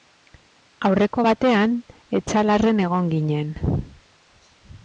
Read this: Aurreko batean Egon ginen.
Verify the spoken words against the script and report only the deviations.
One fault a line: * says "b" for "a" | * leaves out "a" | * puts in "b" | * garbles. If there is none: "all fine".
* puts in "Etxalarren"